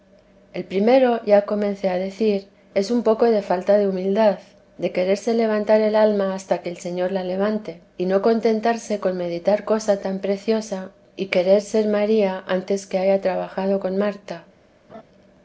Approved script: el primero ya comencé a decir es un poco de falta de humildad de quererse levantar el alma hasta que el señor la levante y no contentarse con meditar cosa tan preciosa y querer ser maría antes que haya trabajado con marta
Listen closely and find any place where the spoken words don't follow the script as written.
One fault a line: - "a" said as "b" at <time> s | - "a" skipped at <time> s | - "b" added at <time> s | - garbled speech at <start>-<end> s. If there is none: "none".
none